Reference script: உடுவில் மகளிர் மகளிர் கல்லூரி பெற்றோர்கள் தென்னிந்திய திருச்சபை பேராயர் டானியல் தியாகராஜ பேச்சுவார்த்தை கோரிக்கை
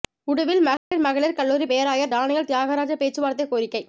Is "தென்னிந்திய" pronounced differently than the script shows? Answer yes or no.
yes